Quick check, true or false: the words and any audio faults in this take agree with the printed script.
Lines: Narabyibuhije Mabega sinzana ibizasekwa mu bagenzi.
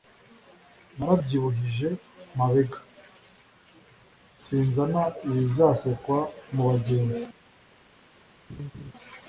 false